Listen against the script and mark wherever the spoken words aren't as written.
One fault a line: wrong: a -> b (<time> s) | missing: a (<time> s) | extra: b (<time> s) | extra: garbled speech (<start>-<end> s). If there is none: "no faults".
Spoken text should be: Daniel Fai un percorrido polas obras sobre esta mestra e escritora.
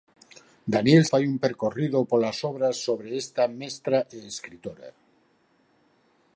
no faults